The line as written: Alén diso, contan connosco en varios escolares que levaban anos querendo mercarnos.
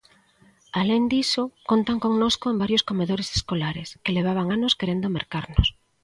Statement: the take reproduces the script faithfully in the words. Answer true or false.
false